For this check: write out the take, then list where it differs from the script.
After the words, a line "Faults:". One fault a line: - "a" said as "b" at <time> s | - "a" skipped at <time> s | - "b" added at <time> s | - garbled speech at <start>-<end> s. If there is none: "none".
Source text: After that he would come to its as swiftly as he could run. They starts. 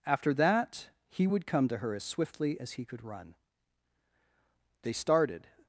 After that he would come to her as swiftly as he could run. They started.
Faults:
- "its" said as "her" at 1.8 s
- "starts" said as "started" at 4.9 s